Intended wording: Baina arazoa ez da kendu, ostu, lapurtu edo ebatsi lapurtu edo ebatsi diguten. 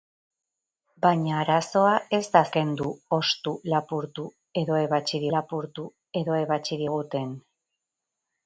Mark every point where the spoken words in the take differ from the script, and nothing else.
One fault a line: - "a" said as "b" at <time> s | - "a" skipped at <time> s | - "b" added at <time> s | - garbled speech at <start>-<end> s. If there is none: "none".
none